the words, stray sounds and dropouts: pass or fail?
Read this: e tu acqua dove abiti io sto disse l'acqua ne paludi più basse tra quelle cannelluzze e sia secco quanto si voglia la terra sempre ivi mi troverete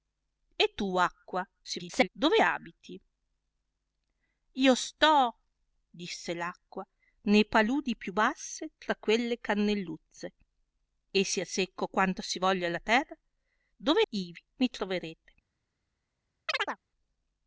fail